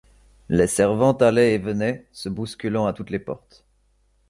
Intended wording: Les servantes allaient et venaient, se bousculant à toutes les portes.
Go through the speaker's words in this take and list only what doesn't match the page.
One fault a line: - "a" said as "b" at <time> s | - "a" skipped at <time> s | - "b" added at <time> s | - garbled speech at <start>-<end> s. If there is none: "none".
none